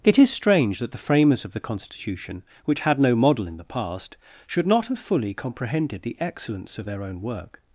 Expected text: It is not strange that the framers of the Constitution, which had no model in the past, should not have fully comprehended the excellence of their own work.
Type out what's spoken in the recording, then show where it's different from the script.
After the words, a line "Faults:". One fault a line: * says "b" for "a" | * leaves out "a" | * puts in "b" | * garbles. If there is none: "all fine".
It is strange that the framers of the Constitution, which had no model in the past, should not have fully comprehended the excellence of their own work.
Faults:
* leaves out "not"